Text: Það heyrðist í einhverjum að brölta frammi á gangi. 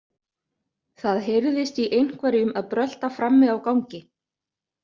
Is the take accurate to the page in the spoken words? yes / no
yes